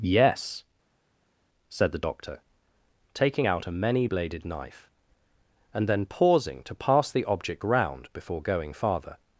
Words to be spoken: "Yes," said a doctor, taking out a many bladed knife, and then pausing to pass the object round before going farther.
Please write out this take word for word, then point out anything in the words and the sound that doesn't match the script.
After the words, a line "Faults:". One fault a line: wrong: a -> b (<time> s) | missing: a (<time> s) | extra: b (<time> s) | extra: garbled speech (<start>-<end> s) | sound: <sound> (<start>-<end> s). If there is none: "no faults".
"Yes," said the doctor, taking out a many bladed knife, and then pausing to pass the object round before going farther.
Faults:
wrong: a -> the (1.9 s)